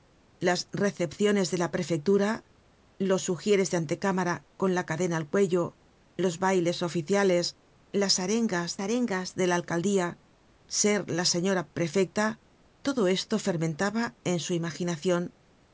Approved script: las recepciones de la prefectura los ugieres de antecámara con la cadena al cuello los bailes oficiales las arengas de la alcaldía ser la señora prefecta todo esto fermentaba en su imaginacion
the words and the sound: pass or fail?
fail